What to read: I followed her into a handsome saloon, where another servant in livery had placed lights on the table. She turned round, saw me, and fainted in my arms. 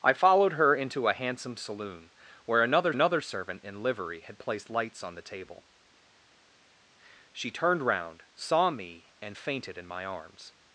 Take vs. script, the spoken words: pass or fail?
fail